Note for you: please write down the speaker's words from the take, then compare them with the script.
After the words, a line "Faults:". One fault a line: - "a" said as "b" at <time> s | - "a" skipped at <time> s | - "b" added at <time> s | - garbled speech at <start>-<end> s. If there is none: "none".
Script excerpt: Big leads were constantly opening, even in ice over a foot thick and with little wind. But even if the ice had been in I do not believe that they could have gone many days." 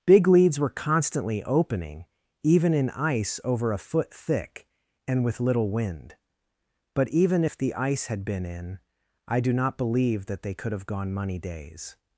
Big leads were constantly opening, even in ice over a foot thick and with little wind. But even if the ice had been in I do not believe that they could have gone money days."
Faults:
- "many" said as "money" at 11.1 s